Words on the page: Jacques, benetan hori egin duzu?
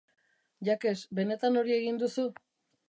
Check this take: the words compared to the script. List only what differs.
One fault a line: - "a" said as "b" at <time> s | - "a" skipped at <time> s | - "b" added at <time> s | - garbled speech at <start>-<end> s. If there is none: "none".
none